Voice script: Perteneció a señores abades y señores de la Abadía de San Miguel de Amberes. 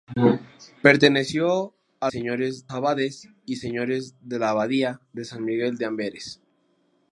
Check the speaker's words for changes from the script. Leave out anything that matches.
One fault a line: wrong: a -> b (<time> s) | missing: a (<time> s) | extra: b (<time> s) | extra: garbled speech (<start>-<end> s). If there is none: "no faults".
no faults